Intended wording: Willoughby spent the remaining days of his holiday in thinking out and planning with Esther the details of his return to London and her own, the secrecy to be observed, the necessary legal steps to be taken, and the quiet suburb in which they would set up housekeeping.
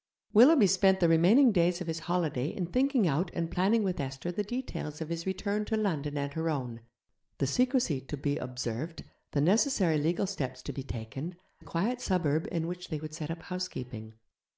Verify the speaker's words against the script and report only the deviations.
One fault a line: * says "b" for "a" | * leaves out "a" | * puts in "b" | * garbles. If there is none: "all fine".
* leaves out "and"